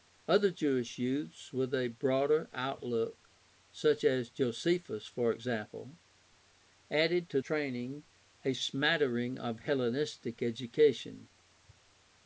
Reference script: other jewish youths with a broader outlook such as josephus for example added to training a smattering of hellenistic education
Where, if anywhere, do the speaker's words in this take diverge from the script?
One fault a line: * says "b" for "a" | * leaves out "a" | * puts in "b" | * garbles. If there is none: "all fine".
all fine